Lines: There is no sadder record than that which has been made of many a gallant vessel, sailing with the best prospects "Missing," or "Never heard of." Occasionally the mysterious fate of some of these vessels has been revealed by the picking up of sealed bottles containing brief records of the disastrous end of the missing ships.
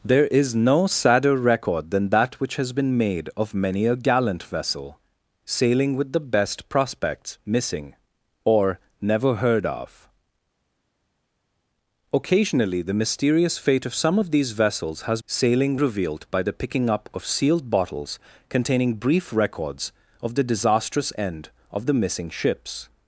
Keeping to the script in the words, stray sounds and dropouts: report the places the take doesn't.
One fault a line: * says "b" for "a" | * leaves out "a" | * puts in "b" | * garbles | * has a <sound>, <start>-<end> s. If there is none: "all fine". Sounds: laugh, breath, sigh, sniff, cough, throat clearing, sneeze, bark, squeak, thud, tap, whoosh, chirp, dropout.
* says "sailing" for "been"